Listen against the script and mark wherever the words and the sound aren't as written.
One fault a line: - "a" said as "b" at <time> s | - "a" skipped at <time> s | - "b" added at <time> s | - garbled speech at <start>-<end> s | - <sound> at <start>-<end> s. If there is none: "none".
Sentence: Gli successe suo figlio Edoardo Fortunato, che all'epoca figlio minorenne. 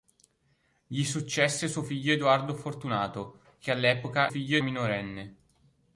none